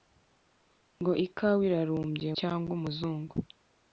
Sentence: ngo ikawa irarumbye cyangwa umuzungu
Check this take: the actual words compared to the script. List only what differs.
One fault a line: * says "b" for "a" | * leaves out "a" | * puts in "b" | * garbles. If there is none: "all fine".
all fine